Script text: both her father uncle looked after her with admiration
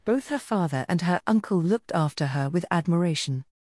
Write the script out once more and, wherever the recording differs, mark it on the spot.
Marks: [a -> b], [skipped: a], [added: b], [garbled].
both her father [added: and her] uncle looked after her with admiration